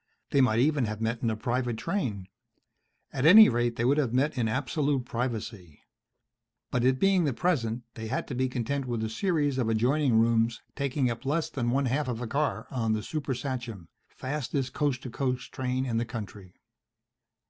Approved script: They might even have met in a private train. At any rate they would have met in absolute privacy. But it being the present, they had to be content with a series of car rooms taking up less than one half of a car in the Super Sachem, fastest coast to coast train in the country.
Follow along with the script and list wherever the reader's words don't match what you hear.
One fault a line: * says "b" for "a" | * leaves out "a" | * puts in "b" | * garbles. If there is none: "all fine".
* says "adjoining" for "car"
* says "on" for "in"